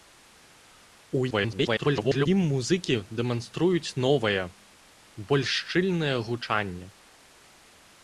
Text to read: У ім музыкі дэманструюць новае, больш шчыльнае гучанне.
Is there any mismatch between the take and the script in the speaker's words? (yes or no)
yes